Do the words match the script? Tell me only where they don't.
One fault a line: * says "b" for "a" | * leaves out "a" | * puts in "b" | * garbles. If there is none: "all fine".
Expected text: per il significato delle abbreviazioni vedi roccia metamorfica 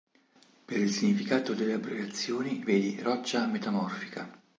all fine